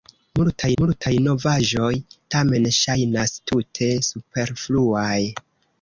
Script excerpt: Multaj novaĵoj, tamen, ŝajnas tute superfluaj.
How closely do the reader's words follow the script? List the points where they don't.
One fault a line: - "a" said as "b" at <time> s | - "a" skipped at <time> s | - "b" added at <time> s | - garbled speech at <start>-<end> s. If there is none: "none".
- "multaj" added at 0.8 s